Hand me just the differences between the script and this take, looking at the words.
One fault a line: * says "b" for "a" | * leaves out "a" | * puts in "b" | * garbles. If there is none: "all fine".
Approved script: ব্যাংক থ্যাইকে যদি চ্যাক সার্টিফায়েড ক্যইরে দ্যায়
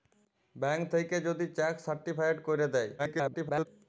* garbles